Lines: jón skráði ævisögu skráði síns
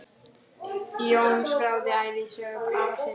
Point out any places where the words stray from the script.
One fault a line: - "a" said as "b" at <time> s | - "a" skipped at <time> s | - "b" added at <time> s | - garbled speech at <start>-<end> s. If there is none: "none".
- "skráði" said as "afa" at 2.8 s